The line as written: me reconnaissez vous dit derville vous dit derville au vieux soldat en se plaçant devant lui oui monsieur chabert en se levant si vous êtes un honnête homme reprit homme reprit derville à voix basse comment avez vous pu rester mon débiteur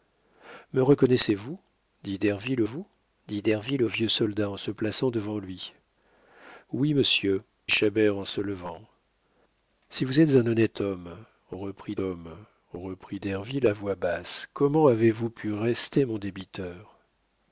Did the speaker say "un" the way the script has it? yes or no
yes